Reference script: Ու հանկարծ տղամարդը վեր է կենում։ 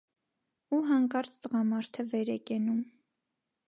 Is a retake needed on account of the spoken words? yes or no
no